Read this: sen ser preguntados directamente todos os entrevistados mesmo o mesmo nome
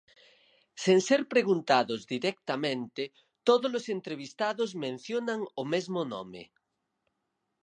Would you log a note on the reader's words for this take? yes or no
yes